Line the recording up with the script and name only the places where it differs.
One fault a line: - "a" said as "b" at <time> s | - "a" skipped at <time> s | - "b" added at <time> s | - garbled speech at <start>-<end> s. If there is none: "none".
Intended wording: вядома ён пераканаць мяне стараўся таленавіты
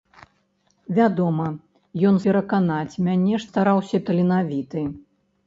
none